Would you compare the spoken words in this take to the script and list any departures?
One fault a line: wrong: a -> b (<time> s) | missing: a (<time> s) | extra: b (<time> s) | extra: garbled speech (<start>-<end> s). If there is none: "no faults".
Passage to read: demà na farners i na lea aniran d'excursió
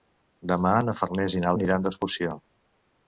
missing: lea (1.5 s)